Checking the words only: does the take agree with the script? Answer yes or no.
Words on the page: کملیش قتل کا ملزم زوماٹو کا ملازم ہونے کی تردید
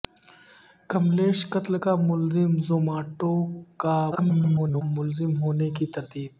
no